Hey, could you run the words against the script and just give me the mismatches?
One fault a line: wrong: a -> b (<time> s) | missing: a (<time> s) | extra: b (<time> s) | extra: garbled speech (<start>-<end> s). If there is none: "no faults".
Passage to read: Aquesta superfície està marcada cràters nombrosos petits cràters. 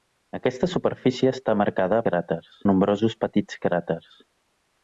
no faults